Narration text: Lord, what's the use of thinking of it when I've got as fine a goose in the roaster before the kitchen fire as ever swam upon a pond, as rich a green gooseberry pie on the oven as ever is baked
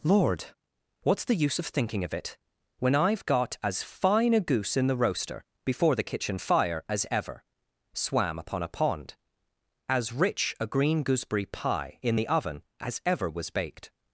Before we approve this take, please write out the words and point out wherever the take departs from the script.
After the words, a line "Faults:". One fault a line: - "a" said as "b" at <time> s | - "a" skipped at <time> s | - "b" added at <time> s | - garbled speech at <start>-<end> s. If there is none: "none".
Lord, what's the use of thinking of it when I've got as fine a goose in the roaster before the kitchen fire as ever swam upon a pond, as rich a green gooseberry pie in the oven as ever was baked
Faults:
- "on" said as "in" at 12.0 s
- "is" said as "was" at 13.3 s